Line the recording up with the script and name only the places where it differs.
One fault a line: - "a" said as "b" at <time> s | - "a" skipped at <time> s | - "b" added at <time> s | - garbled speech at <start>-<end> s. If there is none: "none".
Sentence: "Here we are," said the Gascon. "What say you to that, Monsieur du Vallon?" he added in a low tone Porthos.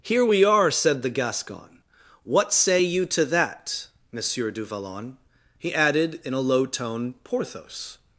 none